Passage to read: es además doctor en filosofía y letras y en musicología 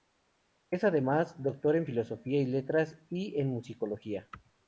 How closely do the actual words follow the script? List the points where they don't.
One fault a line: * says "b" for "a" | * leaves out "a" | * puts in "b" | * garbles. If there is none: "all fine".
all fine